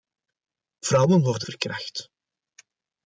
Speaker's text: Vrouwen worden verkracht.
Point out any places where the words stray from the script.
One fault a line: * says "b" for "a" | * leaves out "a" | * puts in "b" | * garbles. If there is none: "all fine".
all fine